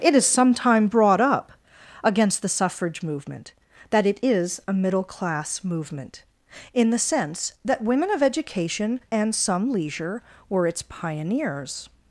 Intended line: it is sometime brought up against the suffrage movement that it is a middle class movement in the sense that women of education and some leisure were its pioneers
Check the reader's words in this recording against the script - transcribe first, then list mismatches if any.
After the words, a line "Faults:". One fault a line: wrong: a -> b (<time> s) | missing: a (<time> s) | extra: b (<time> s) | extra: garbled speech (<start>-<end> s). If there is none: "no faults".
it is sometime brought up against the suffrage movement that it is a middle class movement in the sense that women of education and some leisure were its pioneers
Faults:
no faults